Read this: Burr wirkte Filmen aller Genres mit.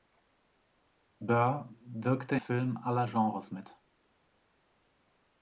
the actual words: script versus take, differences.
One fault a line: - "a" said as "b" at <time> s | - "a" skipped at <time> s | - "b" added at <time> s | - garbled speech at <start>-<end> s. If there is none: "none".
none